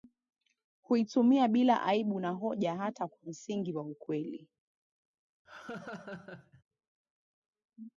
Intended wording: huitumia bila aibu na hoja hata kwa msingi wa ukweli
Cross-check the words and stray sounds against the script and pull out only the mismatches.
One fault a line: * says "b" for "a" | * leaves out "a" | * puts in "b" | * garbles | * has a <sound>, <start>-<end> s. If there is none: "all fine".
* has a laugh, 5.5-6.6 s